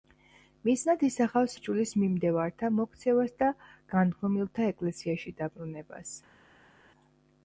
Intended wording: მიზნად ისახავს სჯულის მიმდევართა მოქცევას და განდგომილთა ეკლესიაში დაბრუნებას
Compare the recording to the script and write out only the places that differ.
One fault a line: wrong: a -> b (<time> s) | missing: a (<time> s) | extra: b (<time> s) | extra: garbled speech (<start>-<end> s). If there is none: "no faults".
no faults